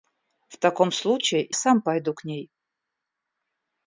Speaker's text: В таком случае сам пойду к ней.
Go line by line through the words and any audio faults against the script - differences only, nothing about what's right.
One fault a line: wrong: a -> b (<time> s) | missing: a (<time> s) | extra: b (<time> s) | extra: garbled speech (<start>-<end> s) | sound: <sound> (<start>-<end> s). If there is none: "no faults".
no faults